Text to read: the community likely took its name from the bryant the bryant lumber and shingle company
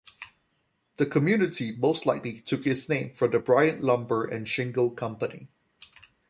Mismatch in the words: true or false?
true